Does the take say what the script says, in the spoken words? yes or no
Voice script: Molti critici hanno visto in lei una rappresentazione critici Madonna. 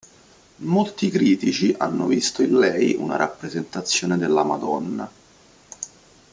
no